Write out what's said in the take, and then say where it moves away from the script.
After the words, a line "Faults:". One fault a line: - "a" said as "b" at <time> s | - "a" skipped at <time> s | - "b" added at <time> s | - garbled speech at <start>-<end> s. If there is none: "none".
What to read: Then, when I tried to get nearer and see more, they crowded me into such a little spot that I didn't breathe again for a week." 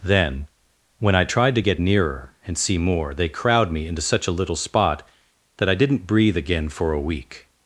Then, when I tried to get nearer and see more, they crowd me into such a little spot that I didn't breathe again for a week."
Faults:
- "crowded" said as "crowd" at 3.3 s